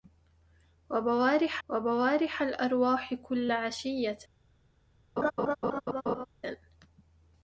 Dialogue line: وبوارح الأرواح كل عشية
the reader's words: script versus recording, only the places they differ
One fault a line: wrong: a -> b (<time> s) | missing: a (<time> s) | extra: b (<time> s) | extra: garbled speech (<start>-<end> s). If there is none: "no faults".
extra: وبوارح (1.7 s)